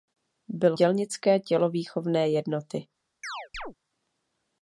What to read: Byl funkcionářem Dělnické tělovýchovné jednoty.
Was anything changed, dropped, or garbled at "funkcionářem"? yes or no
yes